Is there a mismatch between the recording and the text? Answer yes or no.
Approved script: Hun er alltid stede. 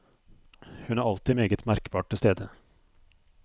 yes